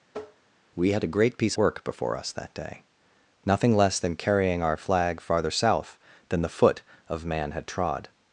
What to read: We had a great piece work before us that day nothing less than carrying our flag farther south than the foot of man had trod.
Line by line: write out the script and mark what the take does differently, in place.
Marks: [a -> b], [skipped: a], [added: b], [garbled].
We had a great piece work before us that day nothing less than carrying our flag farther south than the foot of man had trod.